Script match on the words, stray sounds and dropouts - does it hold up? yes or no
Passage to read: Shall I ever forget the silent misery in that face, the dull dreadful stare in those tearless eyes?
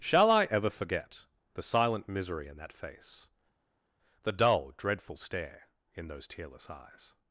yes